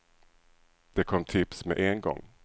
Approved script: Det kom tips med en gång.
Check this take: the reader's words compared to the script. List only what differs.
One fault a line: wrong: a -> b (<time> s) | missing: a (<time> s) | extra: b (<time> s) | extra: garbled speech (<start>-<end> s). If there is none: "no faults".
no faults